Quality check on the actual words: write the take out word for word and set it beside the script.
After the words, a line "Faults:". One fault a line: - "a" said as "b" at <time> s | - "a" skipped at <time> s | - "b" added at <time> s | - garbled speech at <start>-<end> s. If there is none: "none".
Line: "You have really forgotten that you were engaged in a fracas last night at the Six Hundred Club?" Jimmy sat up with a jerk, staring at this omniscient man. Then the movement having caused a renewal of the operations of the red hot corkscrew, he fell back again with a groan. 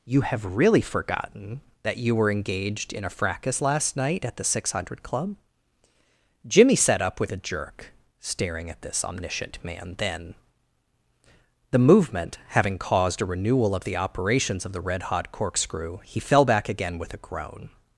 "You have really forgotten that you were engaged in a fracas last night at the Six Hundred Club?" Jimmy sat up with a jerk, staring at this omniscient man. Then the movement having caused a renewal of the operations of the red hot corkscrew, he fell back again with a groan.
Faults:
none